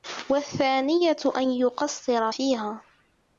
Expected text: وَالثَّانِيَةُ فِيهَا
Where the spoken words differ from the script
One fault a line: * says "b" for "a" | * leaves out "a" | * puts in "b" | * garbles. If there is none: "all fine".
* puts in "أَنْ يُقَصِّرَ"